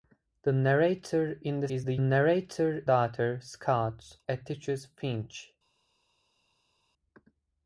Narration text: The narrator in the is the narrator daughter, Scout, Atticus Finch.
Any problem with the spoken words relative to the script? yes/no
no